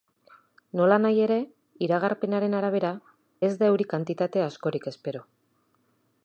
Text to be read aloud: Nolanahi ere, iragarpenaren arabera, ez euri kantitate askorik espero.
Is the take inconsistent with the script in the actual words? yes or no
yes